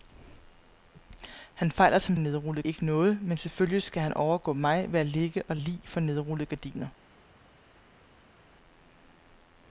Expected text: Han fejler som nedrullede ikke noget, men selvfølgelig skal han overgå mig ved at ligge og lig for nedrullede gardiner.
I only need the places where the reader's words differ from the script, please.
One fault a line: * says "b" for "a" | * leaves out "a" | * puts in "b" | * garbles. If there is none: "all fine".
all fine